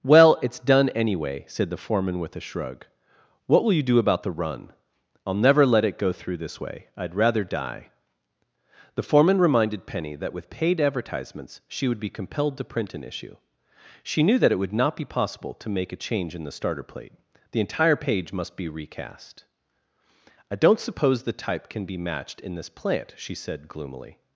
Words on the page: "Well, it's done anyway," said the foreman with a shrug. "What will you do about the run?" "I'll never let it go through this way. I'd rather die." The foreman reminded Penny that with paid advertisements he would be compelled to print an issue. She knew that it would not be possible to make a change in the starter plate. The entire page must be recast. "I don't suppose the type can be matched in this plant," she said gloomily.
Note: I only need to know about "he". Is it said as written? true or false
false